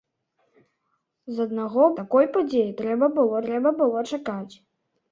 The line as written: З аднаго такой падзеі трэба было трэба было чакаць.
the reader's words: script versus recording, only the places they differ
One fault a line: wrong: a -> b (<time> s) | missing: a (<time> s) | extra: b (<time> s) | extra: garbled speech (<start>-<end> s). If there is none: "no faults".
no faults